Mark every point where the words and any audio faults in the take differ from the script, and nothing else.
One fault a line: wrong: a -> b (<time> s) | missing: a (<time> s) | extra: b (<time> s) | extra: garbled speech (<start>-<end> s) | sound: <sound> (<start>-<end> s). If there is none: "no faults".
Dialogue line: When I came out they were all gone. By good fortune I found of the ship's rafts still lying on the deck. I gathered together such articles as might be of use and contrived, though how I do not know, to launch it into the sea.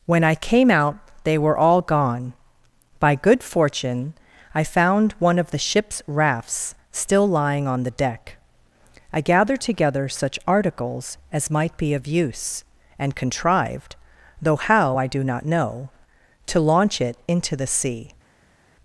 extra: one (5.2 s)